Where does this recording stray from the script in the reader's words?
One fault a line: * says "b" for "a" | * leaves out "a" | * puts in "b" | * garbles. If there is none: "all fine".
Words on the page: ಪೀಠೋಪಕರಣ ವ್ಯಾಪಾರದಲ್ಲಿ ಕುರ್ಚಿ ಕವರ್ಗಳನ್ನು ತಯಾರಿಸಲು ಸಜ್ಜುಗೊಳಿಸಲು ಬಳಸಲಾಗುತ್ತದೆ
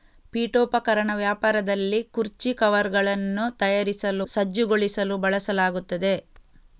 all fine